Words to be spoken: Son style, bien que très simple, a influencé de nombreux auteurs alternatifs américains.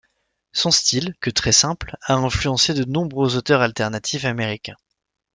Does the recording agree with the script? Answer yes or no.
no